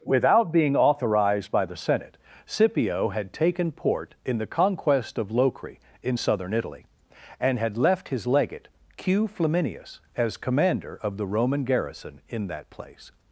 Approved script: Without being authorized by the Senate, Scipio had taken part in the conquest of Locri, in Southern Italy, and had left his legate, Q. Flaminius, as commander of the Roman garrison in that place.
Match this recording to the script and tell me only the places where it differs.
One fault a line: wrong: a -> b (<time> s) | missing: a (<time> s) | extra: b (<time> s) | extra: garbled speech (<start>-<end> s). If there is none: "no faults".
wrong: part -> port (3.7 s)